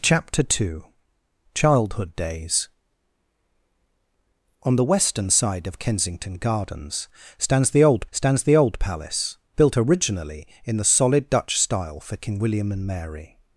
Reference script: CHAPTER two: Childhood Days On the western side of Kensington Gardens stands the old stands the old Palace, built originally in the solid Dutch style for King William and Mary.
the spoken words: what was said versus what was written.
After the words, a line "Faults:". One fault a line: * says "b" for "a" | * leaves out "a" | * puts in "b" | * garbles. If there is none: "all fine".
CHAPTER two: Childhood Days On the western side of Kensington Gardens stands the old stands the old Palace, built originally in the solid Dutch style for King William and Mary.
Faults:
all fine